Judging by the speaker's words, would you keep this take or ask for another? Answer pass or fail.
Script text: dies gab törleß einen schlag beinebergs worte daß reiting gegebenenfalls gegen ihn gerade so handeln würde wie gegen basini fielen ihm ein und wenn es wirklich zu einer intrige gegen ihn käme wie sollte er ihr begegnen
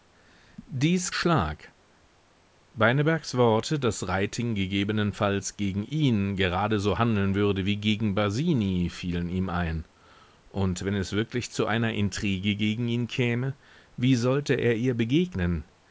fail